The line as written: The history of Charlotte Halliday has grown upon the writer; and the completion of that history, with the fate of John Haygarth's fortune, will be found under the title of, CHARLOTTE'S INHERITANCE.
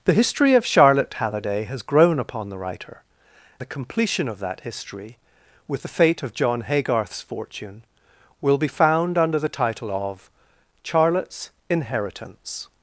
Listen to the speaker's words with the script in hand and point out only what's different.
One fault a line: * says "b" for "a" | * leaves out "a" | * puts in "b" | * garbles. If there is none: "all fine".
* leaves out "and"